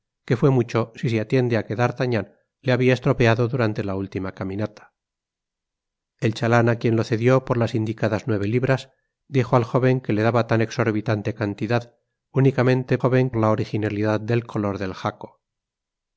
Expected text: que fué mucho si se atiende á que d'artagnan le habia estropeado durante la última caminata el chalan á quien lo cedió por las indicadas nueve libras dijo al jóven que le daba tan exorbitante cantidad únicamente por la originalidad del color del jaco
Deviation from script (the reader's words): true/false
true